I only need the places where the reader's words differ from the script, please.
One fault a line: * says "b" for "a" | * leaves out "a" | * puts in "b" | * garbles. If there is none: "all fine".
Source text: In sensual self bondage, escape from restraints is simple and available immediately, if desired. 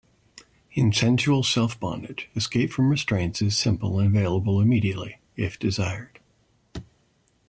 all fine